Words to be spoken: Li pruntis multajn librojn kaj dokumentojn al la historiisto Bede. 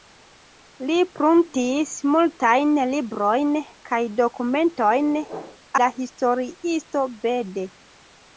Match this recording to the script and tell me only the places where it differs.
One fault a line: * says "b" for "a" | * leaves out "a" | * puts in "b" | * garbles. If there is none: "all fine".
* leaves out "al"